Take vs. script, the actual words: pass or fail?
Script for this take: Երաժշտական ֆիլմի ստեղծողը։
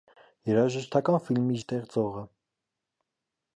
pass